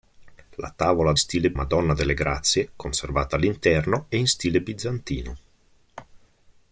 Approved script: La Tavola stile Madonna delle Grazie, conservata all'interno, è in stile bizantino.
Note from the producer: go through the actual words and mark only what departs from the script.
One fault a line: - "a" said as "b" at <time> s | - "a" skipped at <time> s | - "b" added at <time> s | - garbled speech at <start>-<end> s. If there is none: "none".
none